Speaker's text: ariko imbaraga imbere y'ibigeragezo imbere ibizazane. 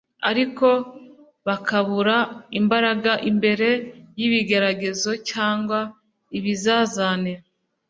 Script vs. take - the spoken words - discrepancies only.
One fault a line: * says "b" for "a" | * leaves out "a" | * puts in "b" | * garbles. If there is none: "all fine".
* puts in "bakabura"
* says "cyangwa" for "imbere"